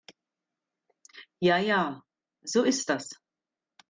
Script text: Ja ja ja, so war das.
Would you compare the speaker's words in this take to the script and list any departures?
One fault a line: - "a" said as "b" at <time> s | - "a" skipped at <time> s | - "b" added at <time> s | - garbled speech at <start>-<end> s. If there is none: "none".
- "ja" skipped at 2.0 s
- "war" said as "ist" at 2.6 s